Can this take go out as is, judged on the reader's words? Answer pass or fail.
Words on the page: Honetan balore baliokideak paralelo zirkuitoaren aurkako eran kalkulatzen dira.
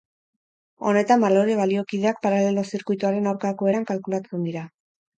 pass